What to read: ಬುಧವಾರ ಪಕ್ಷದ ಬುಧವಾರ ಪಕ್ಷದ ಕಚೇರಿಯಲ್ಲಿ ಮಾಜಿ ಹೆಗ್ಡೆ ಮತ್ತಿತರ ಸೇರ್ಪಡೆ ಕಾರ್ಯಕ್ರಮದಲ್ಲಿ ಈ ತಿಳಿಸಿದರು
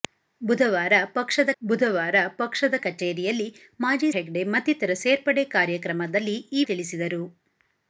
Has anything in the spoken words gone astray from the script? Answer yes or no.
no